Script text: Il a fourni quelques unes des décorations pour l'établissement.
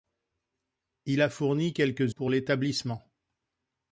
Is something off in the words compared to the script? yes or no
yes